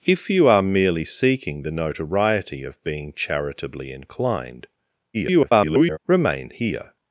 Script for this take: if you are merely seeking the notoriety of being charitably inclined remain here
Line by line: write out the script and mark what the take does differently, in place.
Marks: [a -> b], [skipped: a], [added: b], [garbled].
if you are merely seeking the notoriety of being charitably inclined [garbled] remain here